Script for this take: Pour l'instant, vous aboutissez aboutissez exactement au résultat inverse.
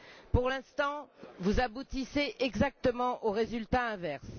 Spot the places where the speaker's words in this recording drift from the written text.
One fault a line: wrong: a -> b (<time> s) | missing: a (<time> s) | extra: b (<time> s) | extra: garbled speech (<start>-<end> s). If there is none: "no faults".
missing: aboutissez (2.4 s)